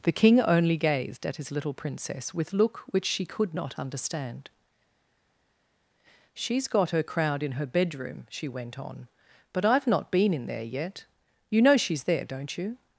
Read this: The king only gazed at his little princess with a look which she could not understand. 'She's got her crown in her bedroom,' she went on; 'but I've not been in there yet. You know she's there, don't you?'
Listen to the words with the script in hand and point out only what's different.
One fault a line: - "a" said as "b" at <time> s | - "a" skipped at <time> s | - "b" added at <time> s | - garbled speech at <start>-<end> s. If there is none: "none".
- "a" skipped at 2.5 s
- "crown" said as "crowd" at 7.0 s